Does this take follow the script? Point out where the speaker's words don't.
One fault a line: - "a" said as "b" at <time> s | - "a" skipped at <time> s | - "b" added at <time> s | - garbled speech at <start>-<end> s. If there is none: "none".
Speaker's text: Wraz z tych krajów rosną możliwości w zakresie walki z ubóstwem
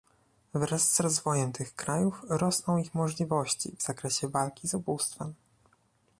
- "rozwojem" added at 1.0 s
- "ich" added at 2.8 s